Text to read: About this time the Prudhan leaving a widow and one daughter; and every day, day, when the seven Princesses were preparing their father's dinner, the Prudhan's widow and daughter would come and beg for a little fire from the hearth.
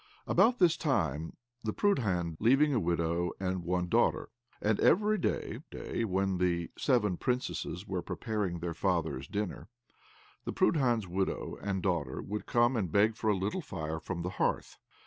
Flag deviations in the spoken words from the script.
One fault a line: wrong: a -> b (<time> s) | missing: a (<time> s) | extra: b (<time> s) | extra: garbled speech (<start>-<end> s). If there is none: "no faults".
no faults